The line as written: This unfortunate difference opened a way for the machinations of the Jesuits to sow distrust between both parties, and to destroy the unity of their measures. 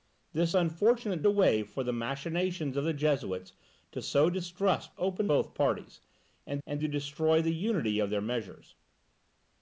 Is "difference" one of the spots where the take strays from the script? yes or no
yes